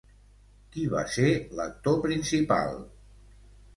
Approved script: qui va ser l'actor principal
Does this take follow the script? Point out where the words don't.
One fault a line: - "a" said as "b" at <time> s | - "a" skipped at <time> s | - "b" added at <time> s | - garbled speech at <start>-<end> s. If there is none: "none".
none